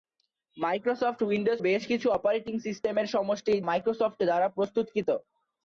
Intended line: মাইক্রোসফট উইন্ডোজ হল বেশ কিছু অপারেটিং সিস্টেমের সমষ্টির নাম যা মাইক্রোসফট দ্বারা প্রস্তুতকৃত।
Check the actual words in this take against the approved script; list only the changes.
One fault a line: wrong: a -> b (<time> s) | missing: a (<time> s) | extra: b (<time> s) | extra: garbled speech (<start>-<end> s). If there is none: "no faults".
missing: হল (1.6 s)
missing: নাম যা (3.6 s)